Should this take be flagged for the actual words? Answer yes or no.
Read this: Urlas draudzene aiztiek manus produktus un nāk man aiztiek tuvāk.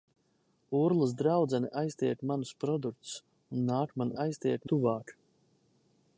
no